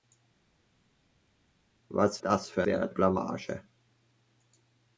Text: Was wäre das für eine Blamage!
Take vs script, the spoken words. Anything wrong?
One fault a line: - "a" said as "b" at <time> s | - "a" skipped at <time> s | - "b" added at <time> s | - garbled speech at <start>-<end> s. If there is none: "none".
- "wäre" skipped at 2.2 s
- "eine" said as "wäre" at 2.6 s